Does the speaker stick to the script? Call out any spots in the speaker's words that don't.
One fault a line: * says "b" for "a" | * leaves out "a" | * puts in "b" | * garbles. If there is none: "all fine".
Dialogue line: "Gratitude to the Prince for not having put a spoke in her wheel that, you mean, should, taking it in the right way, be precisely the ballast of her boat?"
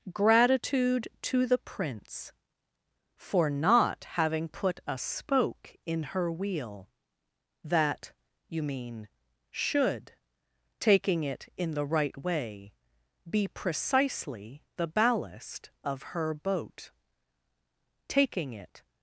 * puts in "Taking it"